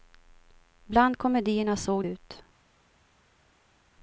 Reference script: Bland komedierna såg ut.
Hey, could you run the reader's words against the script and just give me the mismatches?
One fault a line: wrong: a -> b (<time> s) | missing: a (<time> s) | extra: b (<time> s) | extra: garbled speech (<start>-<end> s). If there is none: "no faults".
no faults